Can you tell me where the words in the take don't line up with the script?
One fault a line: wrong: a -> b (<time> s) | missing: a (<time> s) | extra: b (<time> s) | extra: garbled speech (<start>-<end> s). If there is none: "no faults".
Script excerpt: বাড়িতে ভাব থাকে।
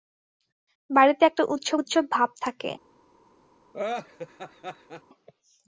extra: একটা উৎসব উৎসব (1.2 s)